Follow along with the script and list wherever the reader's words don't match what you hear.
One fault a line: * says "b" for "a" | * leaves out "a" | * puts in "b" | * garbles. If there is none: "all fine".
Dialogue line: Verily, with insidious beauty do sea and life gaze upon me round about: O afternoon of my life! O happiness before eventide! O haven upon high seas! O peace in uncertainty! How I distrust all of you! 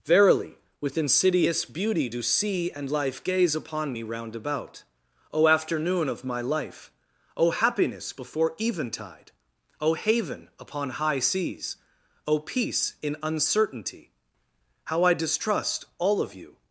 all fine